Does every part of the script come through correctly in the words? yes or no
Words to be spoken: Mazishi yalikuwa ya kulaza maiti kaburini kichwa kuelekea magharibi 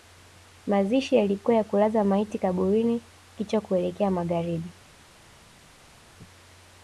yes